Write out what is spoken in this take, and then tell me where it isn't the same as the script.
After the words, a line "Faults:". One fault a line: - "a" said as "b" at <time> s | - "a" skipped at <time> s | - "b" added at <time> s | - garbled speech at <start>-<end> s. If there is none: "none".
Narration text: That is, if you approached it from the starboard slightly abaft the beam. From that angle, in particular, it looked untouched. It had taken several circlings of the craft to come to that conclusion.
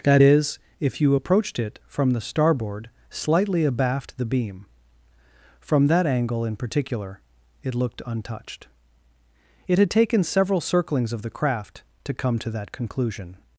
That is, if you approached it from the starboard slightly abaft the beam. From that angle, in particular, it looked untouched. It had taken several circlings of the craft to come to that conclusion.
Faults:
none